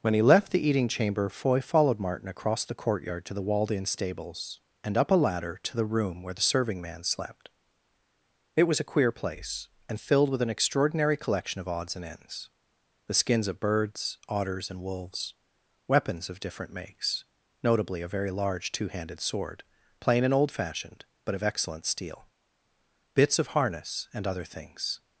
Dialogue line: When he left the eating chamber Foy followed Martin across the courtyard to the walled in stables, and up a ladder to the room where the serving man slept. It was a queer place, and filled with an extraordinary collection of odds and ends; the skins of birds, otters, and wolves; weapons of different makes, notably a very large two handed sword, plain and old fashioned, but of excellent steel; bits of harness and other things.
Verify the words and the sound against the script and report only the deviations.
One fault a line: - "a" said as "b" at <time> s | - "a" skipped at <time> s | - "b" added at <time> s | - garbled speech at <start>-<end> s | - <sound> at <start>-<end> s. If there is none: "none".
none